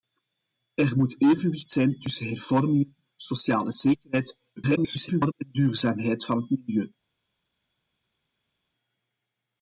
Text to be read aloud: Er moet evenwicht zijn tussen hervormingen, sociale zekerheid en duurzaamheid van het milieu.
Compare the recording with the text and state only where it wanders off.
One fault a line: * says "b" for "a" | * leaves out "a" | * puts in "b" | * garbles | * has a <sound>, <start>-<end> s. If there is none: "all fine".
* garbles